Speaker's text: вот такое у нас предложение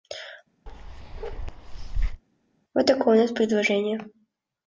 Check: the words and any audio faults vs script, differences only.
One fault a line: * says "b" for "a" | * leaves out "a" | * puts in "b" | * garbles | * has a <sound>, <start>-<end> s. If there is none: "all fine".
* has a bark, 0.7-2.2 s